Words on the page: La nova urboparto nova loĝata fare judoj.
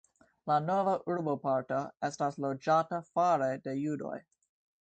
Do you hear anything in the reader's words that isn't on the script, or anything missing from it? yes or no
yes